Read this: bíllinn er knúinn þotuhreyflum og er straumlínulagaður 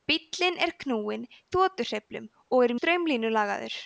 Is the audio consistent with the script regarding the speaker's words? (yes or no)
yes